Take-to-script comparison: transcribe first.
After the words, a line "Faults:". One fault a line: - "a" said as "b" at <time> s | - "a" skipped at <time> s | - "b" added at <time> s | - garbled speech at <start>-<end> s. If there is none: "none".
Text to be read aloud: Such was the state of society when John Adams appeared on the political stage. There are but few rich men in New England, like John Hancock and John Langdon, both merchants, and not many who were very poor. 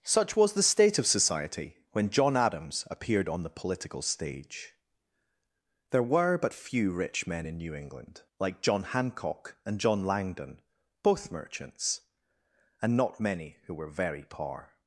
Such was the state of society when John Adams appeared on the political stage. There were but few rich men in New England, like John Hancock and John Langdon, both merchants, and not many who were very poor.
Faults:
- "are" said as "were" at 6.0 s